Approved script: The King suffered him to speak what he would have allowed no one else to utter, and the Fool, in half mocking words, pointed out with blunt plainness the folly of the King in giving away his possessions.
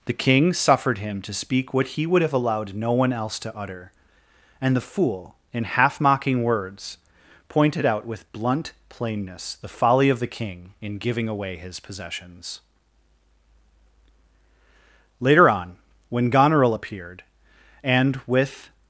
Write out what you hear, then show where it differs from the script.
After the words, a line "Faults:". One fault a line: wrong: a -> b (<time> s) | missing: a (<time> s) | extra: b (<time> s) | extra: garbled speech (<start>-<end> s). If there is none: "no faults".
The King suffered him to speak what he would have allowed no one else to utter, and the Fool, in half mocking words, pointed out with blunt plainness the folly of the King in giving away his possessions. Later on, when Goneril appeared, and with
Faults:
extra: Later on when Goneril appeared and with (15.2 s)